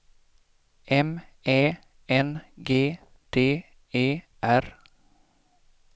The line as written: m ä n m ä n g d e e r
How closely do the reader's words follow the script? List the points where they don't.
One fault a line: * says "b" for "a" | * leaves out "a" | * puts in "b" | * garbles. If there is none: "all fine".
* leaves out "m ä n"
* leaves out "e"